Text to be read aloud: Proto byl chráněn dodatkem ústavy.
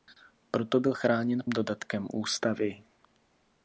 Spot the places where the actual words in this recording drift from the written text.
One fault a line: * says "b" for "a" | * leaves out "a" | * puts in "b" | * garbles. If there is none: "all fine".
all fine